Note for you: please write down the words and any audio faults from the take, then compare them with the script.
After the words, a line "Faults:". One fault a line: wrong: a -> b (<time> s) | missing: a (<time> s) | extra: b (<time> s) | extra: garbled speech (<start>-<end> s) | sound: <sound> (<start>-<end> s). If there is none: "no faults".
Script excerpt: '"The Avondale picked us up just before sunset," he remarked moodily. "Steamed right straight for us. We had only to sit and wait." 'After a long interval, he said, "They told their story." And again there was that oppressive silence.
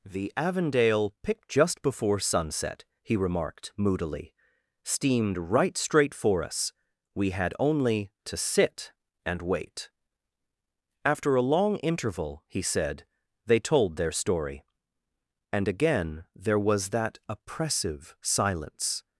'"The Avondale picked just before sunset," he remarked moodily. "Steamed right straight for us. We had only to sit and wait." 'After a long interval, he said, "They told their story." And again there was that oppressive silence.
Faults:
missing: us up (1.4 s)